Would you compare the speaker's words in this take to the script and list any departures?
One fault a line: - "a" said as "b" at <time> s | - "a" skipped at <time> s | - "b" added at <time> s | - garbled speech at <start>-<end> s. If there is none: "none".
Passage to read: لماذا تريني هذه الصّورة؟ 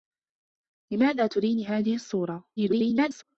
- garbled speech at 2.6-3.2 s